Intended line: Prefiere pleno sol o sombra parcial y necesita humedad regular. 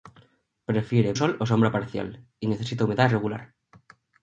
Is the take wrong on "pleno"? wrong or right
wrong